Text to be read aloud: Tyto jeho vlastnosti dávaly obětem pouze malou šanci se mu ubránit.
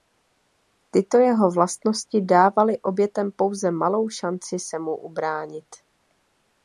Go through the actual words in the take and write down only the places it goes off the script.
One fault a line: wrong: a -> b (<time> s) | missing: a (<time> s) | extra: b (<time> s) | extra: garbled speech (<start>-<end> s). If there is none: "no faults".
no faults